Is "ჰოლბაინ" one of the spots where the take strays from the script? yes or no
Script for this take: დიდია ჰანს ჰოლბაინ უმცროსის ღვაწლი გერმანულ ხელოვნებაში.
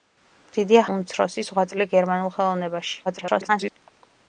yes